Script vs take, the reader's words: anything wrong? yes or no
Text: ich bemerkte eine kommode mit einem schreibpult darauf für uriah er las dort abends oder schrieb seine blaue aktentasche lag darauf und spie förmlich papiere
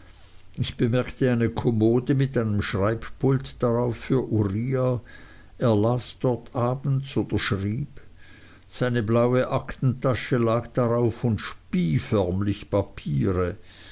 no